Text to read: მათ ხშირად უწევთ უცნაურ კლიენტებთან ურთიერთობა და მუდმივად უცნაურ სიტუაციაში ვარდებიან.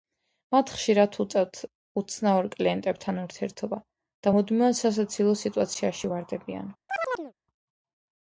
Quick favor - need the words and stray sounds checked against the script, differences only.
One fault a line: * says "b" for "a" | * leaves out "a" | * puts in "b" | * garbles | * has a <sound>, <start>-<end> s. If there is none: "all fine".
* says "სასაცილო" for "უცნაურ"
* has a chirp, 6.9-7.3 s